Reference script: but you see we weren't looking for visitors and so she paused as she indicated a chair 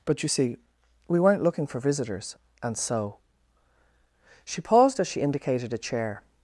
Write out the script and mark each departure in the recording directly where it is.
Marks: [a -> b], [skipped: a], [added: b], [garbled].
but you see we weren't looking for visitors and so she paused as she indicated a chair